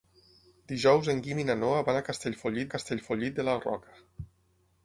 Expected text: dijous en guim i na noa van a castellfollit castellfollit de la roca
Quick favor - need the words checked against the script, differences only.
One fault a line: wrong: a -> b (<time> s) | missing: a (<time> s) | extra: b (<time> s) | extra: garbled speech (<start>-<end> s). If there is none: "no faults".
no faults